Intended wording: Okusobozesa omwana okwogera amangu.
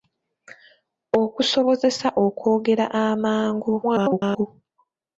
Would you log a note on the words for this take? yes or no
yes